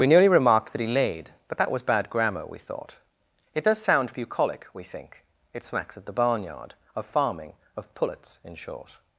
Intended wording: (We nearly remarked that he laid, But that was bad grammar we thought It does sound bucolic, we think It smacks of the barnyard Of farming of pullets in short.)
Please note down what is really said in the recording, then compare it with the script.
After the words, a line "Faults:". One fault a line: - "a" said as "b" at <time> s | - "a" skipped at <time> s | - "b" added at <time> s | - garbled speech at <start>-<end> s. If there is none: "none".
(We nearly remarked that he laid, But that was bad grammar we thought It does sound bucolic, we think It smacks of the barnyard Of farming of pullets in short.)
Faults:
none